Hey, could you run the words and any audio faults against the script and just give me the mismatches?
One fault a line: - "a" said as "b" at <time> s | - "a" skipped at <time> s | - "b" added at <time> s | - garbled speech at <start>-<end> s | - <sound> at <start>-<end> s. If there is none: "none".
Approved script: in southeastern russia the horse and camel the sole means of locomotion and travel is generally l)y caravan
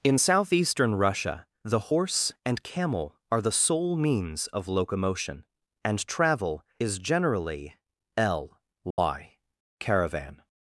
- "are" added at 3.3 s
- dropout at 8.9-9.0 s